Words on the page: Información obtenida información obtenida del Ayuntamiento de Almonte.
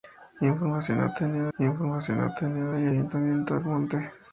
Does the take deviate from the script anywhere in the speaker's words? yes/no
no